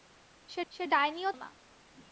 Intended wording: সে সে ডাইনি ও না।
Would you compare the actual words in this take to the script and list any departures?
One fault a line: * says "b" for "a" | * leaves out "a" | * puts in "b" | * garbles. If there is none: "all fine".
all fine